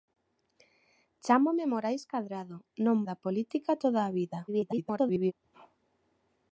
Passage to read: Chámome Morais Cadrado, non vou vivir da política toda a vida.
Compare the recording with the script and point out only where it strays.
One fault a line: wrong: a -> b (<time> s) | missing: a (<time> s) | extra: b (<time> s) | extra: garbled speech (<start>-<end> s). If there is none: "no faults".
missing: vou vivir (3.0 s)
extra: garbled speech (4.5-5.3 s)